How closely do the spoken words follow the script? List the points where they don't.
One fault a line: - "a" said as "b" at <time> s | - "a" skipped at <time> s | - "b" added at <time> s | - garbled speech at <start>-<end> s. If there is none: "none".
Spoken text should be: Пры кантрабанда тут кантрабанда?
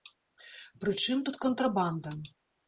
- "кантрабанда" said as "чым" at 1.0 s